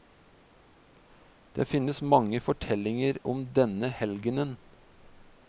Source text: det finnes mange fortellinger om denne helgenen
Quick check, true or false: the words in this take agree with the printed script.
true